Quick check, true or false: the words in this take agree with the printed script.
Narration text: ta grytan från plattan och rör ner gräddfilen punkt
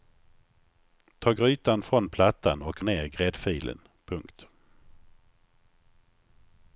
false